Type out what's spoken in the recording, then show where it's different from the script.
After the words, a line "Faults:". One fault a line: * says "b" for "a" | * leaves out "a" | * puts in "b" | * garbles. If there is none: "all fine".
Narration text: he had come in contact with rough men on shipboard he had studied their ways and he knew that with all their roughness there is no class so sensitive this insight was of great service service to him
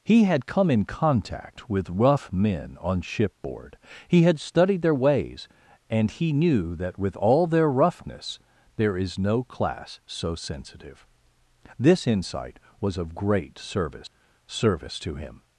he had come in contact with rough men on shipboard he had studied their ways and he knew that with all their roughness there is no class so sensitive this insight was of great service service to him
Faults:
all fine